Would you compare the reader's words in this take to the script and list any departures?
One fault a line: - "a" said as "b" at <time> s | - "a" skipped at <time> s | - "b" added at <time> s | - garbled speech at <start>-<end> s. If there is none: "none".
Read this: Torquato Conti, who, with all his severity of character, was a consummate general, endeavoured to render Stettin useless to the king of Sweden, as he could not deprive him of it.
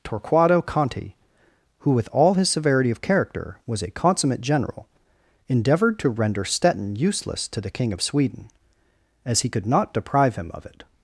none